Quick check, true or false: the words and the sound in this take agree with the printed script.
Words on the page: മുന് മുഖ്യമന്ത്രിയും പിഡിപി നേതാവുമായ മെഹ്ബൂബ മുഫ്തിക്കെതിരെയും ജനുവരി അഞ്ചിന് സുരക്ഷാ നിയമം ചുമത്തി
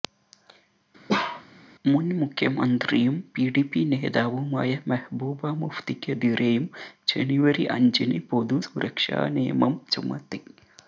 false